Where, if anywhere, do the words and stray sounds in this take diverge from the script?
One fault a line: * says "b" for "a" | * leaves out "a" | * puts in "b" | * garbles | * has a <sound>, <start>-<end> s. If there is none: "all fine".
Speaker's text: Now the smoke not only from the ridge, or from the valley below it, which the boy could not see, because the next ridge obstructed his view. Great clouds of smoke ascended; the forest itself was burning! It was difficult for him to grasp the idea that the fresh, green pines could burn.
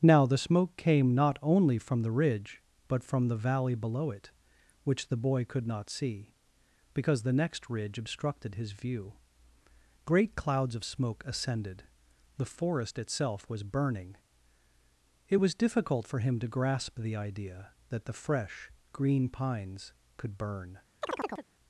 * puts in "came"
* says "but" for "or"
* has a chirp, 21.0-21.5 s